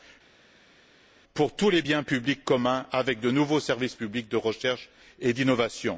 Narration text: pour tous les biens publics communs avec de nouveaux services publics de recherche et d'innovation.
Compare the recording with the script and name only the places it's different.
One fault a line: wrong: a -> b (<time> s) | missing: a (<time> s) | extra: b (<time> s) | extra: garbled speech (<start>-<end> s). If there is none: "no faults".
no faults